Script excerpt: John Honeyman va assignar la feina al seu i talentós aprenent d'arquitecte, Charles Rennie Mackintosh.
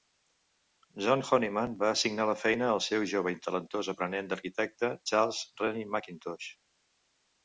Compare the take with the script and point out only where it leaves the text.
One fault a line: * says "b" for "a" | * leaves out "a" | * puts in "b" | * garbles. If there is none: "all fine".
* puts in "jove"